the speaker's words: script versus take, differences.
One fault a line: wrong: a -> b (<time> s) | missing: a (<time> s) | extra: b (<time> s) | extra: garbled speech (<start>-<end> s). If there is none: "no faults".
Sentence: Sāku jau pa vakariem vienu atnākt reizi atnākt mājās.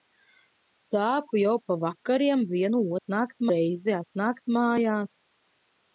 no faults